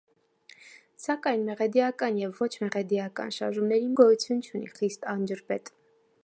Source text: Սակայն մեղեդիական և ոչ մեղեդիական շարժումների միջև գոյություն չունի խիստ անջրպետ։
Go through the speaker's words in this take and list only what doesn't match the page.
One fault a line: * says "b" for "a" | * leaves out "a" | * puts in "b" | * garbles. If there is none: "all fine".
* leaves out "միջև"